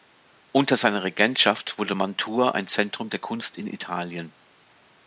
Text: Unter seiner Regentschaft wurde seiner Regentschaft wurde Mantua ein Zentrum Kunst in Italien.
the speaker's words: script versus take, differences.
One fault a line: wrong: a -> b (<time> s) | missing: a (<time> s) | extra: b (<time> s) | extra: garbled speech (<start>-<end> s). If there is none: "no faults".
missing: seiner Regentschaft wurde (1.9 s)
extra: der (3.1 s)